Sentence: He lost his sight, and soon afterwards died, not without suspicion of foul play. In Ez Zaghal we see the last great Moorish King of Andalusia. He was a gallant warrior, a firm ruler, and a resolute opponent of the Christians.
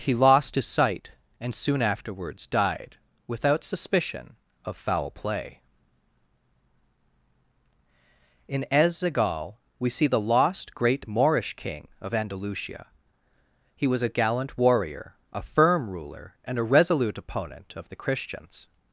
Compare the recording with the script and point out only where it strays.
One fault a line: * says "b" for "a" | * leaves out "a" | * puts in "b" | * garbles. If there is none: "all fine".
* leaves out "not"
* says "lost" for "last"